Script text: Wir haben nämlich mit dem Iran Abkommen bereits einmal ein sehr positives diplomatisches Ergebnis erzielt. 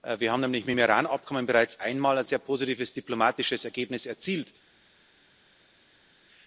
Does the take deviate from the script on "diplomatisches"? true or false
false